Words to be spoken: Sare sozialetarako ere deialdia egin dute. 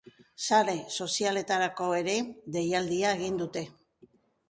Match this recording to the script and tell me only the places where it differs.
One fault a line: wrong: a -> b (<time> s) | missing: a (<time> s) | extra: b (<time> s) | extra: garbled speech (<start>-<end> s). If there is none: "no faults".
no faults